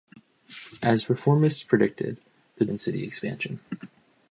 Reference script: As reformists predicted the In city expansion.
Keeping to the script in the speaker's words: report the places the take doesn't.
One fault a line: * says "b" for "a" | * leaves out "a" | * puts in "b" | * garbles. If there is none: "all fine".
all fine